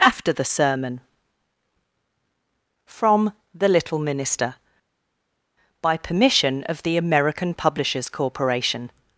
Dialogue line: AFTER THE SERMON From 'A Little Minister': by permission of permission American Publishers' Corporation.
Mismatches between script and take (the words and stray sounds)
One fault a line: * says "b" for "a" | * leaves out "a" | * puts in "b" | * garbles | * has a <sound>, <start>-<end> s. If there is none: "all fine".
* says "The" for "A"
* says "the" for "permission"